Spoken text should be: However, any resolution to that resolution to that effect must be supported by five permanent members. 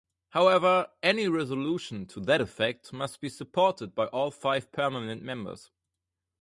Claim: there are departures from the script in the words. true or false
true